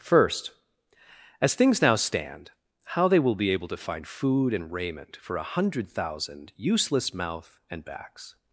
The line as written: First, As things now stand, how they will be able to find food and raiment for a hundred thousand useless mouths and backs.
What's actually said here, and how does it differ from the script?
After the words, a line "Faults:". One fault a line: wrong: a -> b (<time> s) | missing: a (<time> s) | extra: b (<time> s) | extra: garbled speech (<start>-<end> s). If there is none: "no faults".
First, As things now stand, how they will be able to find food and raiment for a hundred thousand useless mouth and backs.
Faults:
wrong: mouths -> mouth (7.1 s)